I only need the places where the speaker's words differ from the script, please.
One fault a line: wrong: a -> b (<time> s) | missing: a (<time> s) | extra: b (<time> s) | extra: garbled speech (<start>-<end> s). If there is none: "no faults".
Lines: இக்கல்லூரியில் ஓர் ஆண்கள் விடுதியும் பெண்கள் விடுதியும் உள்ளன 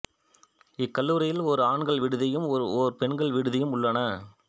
extra: ஓர் (2.8 s)